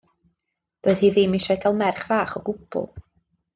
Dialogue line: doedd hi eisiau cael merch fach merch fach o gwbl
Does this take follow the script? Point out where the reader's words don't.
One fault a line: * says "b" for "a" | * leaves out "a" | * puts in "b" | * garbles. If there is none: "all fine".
* puts in "ddim"
* leaves out "merch fach"